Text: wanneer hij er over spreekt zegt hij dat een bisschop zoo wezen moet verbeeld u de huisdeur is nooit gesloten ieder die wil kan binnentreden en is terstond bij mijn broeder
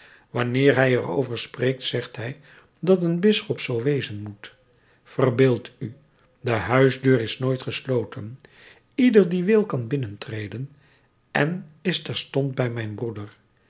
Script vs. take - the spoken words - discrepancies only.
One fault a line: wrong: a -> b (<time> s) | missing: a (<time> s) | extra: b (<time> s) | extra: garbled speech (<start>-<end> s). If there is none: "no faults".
no faults